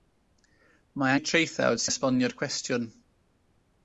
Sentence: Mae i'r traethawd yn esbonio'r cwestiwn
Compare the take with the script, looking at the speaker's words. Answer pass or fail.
pass